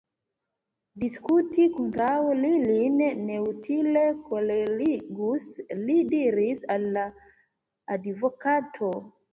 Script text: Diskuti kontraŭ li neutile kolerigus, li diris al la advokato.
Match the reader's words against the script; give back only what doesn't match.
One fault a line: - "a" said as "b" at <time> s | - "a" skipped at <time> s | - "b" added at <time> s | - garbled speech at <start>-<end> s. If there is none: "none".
- "lin" added at 2.7 s